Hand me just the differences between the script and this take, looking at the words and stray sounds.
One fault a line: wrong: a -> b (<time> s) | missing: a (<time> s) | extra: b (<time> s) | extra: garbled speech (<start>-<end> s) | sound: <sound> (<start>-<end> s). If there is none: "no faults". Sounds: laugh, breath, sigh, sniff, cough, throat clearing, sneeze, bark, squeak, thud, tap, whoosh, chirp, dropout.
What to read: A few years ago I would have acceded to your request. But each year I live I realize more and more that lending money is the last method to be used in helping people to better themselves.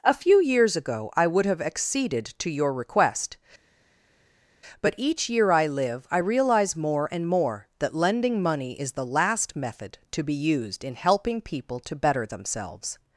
no faults